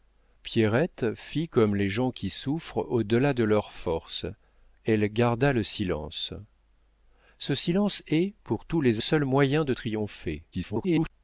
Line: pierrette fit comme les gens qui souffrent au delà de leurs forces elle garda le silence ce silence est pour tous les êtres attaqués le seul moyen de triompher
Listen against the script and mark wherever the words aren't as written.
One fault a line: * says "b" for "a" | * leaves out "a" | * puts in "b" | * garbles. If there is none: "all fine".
* leaves out "êtres attaqués le"
* garbles